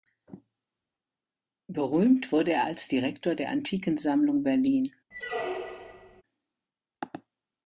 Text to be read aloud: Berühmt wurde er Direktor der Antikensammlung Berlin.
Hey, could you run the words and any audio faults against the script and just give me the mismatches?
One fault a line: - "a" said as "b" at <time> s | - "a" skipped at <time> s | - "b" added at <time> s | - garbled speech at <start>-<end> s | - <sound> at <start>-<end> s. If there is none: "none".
- "als" added at 2.6 s
- squeak at 5.1-6.2 s